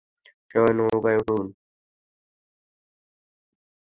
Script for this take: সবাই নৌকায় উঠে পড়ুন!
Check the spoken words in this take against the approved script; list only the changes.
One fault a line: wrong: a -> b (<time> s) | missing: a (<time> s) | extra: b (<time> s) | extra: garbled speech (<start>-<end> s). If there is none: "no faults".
missing: উঠে (1.2 s)